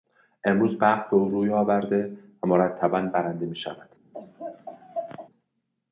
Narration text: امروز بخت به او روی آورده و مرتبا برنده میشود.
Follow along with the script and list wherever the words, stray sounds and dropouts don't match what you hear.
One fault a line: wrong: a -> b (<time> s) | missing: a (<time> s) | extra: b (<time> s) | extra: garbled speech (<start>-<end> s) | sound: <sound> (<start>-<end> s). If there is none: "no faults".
sound: laugh (4.1-5.3 s)